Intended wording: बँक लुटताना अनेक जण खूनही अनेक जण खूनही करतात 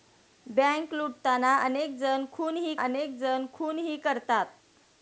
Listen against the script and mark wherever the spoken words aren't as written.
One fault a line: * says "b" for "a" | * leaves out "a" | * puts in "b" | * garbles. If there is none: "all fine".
all fine